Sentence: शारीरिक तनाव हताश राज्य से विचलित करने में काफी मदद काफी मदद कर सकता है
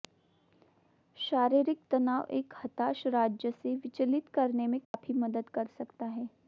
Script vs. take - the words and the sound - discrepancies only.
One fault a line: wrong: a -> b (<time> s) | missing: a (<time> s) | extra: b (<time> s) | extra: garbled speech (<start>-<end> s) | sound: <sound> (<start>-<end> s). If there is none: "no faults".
extra: एक (2.3 s)
sound: dropout (4.8-4.9 s)
missing: काफी मदद (5.5 s)